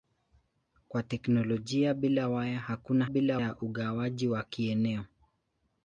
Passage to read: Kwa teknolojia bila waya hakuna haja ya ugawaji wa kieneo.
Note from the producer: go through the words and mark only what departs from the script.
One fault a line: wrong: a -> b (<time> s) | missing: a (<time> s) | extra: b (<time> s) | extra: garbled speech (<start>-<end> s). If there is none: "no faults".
wrong: haja -> bila (3.1 s)